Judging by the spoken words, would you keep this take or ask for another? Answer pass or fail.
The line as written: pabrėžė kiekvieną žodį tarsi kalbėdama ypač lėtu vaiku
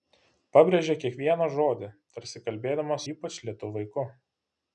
pass